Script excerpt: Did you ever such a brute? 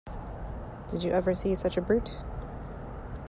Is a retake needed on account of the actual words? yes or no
yes